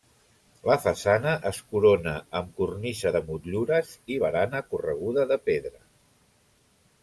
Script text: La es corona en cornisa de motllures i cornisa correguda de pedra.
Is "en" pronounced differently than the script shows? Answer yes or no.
yes